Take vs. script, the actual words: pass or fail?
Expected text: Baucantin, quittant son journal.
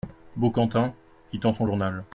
pass